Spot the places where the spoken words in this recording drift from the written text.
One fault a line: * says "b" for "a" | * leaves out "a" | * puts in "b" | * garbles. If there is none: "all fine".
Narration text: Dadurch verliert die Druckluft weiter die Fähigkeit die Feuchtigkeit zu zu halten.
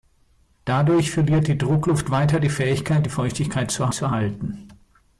all fine